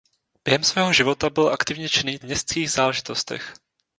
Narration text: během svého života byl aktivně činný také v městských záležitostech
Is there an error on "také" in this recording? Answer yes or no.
yes